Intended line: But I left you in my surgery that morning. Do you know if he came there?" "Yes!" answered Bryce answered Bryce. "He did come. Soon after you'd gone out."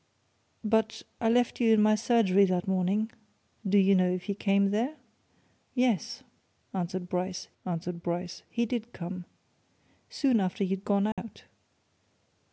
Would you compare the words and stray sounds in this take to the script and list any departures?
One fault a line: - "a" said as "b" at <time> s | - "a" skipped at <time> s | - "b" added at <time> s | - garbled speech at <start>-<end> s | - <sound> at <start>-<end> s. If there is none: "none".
- dropout at 11.1-11.2 s